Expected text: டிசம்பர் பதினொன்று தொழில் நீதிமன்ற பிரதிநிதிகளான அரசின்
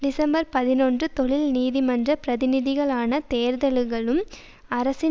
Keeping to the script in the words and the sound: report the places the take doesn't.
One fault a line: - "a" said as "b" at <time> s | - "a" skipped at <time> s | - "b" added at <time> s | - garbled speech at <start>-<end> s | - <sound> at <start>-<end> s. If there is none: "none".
- "தேர்தல்களும்" added at 3.3 s